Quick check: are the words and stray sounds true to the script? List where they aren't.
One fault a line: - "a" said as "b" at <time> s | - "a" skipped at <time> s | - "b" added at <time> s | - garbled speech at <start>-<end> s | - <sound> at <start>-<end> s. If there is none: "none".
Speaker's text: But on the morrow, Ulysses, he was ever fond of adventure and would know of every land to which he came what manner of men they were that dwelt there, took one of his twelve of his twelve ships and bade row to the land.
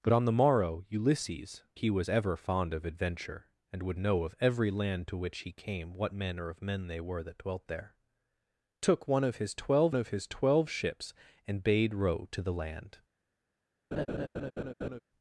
- laugh at 13.9-15.0 s